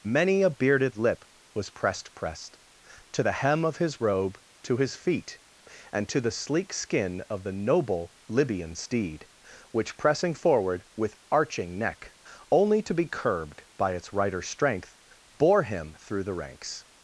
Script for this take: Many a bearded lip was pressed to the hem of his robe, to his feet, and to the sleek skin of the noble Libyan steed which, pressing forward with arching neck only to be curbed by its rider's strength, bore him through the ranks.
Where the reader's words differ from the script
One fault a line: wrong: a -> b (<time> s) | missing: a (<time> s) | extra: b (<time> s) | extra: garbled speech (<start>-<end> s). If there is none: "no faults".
extra: pressed (2.1 s)